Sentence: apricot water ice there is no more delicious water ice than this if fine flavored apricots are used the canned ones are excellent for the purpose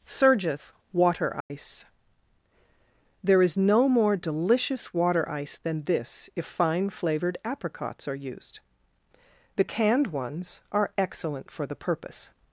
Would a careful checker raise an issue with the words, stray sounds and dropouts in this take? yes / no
yes